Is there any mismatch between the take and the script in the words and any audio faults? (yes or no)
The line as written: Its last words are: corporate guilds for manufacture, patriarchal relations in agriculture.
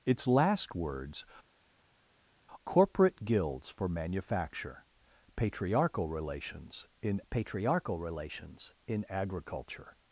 yes